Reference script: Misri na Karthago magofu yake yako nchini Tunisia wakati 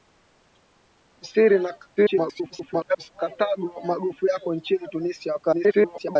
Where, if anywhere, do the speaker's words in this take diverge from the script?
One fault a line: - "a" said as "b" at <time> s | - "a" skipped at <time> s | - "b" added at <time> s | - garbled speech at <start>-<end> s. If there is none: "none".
- garbled speech at 2.0-3.1 s
- "yake" skipped at 4.3 s
- garbled speech at 5.5-6.2 s